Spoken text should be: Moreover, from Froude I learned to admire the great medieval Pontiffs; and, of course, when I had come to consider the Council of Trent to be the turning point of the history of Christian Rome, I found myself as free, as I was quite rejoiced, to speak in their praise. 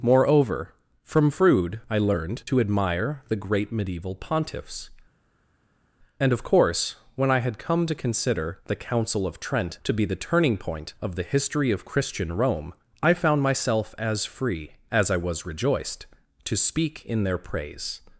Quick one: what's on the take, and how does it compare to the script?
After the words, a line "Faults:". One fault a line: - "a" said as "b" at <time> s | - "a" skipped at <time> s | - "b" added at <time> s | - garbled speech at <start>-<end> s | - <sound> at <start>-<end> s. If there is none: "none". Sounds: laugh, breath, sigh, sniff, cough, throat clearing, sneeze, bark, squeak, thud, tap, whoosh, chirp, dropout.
Moreover, from Froude I learned to admire the great medieval Pontiffs; and, of course, when I had come to consider the Council of Trent to be the turning point of the history of Christian Rome, I found myself as free, as I was rejoiced, to speak in their praise.
Faults:
- "quite" skipped at 15.4 s